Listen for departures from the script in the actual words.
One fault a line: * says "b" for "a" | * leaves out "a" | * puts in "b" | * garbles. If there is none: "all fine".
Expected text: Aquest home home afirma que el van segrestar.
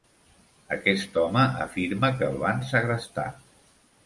* leaves out "home"